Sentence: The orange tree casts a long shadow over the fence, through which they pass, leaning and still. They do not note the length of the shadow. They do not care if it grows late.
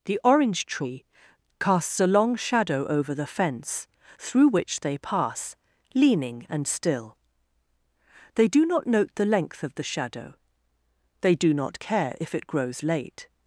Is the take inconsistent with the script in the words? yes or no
no